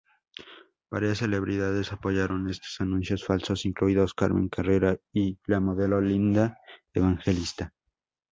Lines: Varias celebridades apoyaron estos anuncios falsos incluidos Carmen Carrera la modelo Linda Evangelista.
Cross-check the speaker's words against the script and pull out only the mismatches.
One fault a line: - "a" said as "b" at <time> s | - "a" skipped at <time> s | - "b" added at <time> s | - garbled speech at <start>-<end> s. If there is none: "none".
- "y" added at 5.1 s